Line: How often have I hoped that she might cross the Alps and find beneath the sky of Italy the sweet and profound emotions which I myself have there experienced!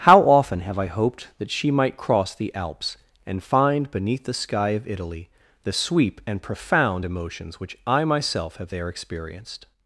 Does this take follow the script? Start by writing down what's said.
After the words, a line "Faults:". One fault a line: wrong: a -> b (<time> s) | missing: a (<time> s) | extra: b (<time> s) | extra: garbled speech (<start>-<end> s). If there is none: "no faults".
How often have I hoped that she might cross the Alps and find beneath the sky of Italy the sweep and profound emotions which I myself have there experienced!
Faults:
wrong: sweet -> sweep (5.7 s)